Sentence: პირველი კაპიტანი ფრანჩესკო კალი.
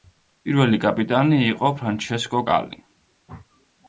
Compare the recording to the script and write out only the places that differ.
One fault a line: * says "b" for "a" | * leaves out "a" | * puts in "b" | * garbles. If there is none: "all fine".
* puts in "იყო"